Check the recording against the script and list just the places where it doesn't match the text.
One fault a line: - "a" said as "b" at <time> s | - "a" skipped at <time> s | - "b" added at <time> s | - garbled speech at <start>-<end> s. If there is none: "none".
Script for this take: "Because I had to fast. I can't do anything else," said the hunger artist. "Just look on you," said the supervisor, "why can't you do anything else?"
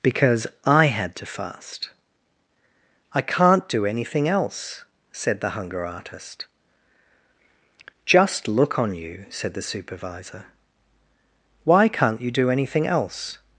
none